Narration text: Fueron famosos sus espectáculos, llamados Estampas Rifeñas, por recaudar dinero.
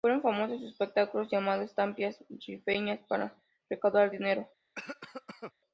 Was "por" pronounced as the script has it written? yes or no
no